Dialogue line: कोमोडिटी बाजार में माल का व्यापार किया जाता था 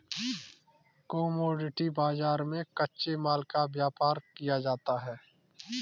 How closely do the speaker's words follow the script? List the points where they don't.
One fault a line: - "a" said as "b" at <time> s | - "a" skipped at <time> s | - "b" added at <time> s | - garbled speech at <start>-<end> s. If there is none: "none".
- "कच्चे" added at 2.8 s
- "था" said as "है" at 5.0 s